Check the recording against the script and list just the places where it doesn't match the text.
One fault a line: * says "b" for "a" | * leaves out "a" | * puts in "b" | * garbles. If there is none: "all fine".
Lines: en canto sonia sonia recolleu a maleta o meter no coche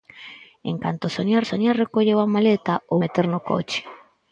all fine